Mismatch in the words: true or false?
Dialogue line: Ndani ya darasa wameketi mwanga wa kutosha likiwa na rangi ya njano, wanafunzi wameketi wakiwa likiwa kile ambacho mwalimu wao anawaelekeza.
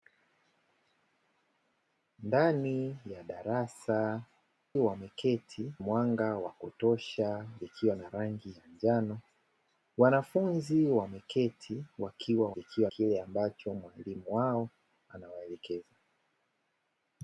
false